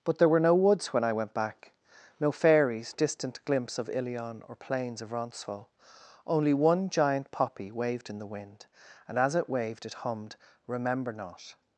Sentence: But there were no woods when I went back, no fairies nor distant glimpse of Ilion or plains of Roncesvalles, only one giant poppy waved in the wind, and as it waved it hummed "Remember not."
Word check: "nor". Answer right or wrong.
wrong